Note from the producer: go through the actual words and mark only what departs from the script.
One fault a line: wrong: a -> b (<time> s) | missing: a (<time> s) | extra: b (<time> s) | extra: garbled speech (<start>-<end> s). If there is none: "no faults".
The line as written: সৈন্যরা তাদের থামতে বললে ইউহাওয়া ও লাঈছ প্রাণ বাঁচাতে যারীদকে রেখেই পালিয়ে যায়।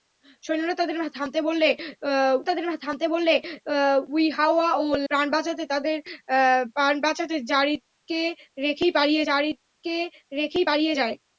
extra: তাদের থামতে বললে (2.5 s)
missing: লাঈছ (4.8 s)
extra: যারীদকে রেখেই পালিয়ে (9.3 s)